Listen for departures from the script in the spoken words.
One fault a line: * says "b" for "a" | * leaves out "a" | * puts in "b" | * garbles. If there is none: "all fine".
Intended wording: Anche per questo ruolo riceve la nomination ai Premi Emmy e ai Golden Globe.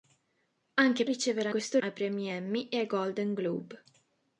* leaves out "per questo ruolo"
* says "questo" for "nomination"